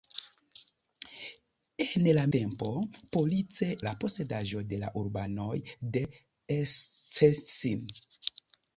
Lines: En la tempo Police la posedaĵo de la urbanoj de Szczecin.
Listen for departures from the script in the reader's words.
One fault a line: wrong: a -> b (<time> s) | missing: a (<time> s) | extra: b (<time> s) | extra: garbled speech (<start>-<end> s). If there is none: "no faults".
no faults